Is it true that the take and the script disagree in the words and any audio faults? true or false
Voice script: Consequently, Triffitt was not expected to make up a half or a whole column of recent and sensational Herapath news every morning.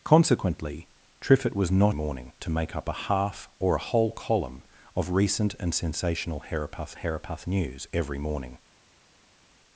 true